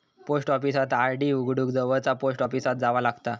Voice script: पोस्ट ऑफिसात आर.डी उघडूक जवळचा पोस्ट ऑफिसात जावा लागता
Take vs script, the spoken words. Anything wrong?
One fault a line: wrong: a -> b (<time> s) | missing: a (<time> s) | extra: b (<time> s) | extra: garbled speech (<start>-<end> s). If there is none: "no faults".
no faults